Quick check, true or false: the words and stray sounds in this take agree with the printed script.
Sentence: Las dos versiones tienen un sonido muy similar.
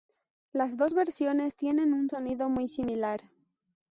true